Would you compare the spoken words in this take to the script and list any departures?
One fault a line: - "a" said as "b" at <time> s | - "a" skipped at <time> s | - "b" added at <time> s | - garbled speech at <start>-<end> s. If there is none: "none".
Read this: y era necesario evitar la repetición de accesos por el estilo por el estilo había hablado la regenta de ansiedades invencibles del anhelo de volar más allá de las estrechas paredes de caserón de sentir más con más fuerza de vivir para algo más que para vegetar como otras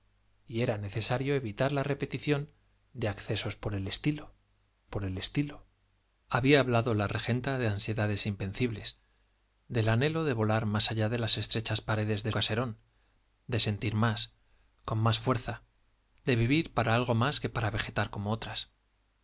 none